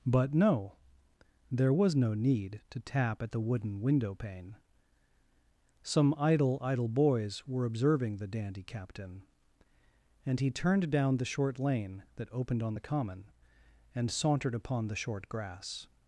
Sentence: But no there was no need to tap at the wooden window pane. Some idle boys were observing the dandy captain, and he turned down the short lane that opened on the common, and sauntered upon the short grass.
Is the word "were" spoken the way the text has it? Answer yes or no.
yes